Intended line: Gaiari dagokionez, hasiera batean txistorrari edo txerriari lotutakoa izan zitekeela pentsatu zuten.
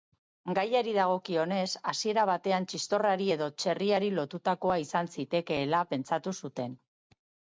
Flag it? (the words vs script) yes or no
no